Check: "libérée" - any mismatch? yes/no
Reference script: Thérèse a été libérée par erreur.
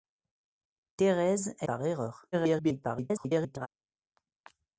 yes